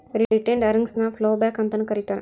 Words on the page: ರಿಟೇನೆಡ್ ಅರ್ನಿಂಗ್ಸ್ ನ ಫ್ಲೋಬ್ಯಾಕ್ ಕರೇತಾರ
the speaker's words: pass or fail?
fail